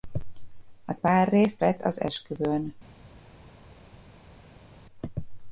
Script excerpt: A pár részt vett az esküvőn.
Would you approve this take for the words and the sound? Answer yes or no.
yes